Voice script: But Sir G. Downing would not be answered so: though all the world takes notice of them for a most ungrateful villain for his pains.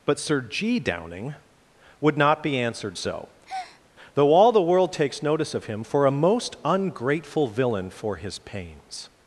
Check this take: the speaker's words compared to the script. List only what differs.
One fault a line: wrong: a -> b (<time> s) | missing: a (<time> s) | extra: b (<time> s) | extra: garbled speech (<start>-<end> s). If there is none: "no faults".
wrong: them -> him (5.7 s)